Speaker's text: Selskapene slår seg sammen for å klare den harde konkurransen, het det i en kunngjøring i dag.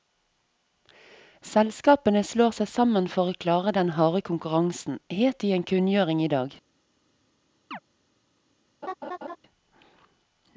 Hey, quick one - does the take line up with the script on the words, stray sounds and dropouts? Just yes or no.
no